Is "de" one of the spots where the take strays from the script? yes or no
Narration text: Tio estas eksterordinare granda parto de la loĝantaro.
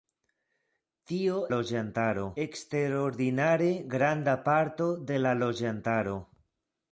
no